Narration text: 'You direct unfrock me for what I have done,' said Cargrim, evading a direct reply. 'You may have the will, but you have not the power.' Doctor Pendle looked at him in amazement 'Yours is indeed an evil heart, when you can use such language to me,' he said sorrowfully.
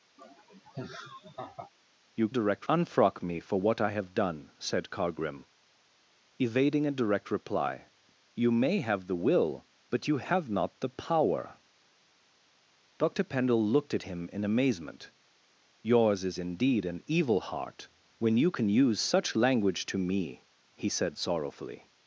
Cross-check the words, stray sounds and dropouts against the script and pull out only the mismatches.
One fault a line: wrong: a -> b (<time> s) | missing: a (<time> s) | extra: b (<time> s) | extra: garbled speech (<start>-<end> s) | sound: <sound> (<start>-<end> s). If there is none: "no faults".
sound: laugh (0.2-1.7 s)